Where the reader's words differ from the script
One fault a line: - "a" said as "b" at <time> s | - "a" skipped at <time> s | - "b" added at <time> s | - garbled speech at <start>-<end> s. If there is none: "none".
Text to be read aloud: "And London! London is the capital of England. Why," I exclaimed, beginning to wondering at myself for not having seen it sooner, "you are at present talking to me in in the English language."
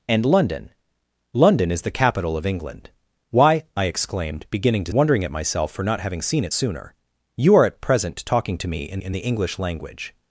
none